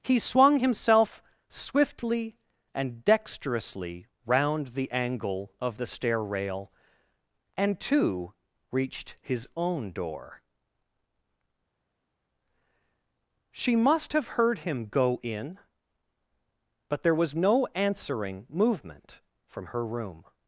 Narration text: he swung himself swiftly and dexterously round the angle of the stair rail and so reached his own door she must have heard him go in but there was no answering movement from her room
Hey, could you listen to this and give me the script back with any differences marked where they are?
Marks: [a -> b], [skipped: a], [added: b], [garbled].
he swung himself swiftly and dexterously round the angle of the stair rail and [so -> too] reached his own door she must have heard him go in but there was no answering movement from her room